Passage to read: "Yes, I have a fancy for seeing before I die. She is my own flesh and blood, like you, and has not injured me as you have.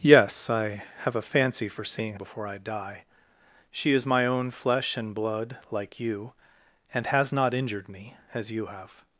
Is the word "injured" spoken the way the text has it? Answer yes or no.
yes